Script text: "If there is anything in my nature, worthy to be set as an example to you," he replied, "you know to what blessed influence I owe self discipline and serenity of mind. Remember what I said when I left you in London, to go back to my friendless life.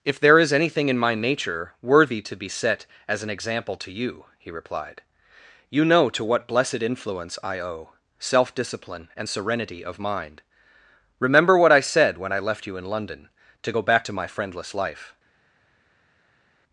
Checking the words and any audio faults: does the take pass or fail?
pass